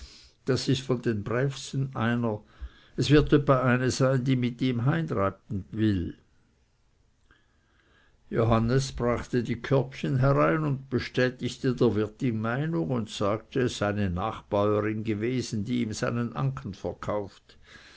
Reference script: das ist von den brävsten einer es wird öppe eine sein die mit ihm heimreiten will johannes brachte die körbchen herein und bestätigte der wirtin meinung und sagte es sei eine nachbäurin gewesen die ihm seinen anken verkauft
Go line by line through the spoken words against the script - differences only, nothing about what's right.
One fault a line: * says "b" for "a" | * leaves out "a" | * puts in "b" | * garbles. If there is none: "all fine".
all fine